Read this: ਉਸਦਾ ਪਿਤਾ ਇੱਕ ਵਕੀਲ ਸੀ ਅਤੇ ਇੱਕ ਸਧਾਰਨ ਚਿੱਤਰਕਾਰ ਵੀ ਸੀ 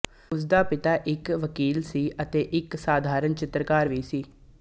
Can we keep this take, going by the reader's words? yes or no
yes